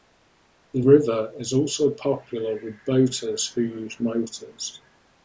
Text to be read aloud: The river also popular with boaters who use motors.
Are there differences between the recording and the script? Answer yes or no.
yes